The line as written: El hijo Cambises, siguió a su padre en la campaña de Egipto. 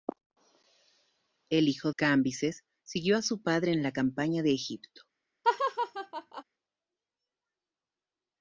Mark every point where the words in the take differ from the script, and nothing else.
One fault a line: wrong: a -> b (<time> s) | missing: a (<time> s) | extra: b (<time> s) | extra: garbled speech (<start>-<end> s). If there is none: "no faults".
no faults